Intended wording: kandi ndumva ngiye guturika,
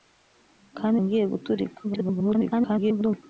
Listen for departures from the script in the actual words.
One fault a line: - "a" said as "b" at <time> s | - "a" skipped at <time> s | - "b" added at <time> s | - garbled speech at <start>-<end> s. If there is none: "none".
- "ndumva" skipped at 1.0 s
- garbled speech at 1.8-3.2 s